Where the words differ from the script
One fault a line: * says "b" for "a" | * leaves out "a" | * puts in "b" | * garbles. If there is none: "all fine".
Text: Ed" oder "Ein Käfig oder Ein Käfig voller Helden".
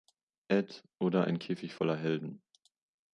* leaves out "oder Ein Käfig"